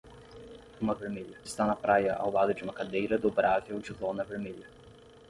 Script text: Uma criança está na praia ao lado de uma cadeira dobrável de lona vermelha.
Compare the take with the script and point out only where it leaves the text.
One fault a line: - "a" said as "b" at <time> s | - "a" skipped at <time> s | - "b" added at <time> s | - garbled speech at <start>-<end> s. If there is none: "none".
- "criança" said as "vermelha" at 0.9 s